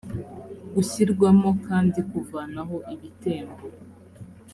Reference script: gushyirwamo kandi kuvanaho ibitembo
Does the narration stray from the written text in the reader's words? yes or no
no